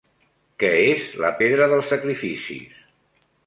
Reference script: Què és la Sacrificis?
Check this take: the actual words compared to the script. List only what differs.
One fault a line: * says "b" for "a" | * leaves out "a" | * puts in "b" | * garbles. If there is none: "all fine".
* puts in "Pedra dels"